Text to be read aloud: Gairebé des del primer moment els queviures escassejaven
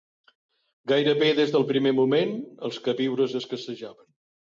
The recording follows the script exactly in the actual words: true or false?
true